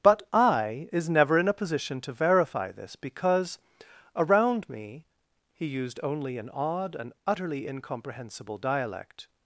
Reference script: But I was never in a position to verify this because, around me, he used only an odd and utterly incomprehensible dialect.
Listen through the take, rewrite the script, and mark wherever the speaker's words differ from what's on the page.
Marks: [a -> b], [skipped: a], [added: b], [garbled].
But I [was -> is] never in a position to verify this because, around me, he used only an odd and utterly incomprehensible dialect.